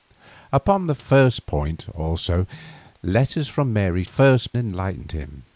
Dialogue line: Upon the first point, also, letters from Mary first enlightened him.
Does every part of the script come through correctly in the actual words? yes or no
yes